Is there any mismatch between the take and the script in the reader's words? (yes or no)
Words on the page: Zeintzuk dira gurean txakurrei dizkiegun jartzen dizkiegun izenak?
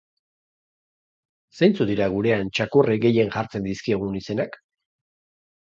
yes